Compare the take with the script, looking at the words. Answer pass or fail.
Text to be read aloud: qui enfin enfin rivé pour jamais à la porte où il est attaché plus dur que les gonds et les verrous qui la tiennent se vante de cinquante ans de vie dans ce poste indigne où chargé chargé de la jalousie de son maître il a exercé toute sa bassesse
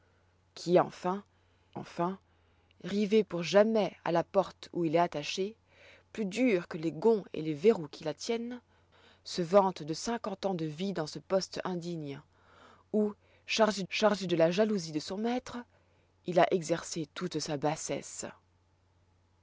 pass